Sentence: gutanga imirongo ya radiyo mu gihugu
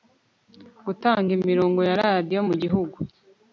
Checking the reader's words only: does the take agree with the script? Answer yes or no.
yes